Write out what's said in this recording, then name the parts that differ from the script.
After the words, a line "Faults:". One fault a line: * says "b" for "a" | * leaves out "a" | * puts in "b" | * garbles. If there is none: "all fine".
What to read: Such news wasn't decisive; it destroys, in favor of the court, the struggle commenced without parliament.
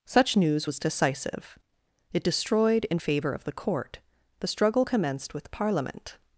Such news was decisive; it destroyed, in favor of the court, the struggle commenced with parliament.
Faults:
* says "was" for "wasn't"
* says "destroyed" for "destroys"
* says "with" for "without"